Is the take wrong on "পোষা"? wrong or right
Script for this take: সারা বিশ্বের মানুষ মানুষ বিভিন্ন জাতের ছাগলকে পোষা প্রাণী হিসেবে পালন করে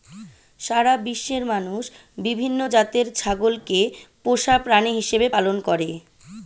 right